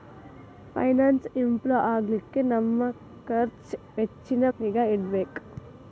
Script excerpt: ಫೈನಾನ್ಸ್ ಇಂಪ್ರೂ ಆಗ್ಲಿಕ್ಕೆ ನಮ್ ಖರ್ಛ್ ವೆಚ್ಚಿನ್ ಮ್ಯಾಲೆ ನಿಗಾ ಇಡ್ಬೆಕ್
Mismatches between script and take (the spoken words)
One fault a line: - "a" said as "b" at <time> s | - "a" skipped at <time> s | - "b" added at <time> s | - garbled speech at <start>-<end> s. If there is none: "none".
- "ಮ್ಯಾಲೆ" skipped at 4.5 s